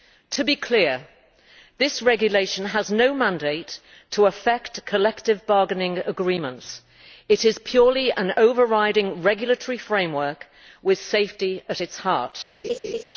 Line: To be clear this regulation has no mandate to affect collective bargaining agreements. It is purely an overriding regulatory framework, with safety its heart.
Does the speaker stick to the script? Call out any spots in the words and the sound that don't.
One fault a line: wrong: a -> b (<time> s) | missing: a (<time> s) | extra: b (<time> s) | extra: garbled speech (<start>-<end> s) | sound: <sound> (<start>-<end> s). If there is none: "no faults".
extra: at (11.7 s)
sound: laugh (12.6-13.0 s)